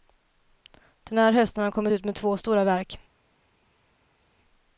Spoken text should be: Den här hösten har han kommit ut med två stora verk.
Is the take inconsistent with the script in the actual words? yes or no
no